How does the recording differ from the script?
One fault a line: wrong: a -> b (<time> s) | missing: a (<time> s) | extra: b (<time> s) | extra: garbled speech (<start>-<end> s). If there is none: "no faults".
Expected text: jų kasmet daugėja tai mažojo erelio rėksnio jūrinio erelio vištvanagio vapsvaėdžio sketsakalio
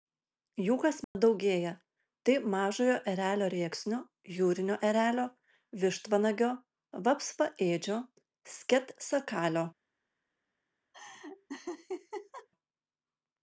no faults